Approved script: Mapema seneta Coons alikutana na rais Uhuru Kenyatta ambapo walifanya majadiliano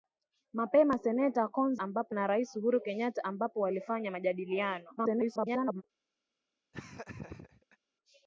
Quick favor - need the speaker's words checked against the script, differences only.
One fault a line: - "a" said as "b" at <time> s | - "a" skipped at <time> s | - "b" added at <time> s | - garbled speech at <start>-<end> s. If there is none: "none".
- "alikutana" said as "ambapo" at 1.8 s
- garbled speech at 5.0-5.8 s